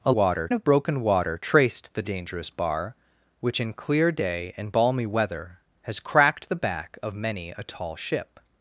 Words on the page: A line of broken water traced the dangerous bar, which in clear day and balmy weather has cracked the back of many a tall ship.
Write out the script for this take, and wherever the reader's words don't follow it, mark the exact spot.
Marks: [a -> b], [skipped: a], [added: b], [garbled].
A [line -> water] of broken water traced the dangerous bar, which in clear day and balmy weather has cracked the back of many a tall ship.